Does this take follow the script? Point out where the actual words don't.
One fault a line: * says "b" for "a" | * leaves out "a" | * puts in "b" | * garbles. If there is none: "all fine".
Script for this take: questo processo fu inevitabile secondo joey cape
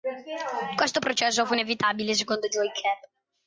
all fine